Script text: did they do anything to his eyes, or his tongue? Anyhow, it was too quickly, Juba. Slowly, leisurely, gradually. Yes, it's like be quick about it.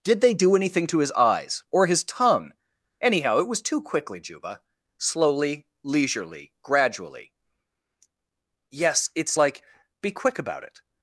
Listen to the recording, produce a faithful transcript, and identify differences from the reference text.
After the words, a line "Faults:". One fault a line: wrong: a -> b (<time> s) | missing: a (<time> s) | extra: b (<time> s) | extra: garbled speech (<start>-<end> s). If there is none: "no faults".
did they do anything to his eyes, or his tongue? Anyhow, it was too quickly, Juba. Slowly, leisurely, gradually. Yes, it's like be quick about it.
Faults:
no faults